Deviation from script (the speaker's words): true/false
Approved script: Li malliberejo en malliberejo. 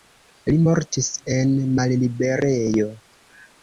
true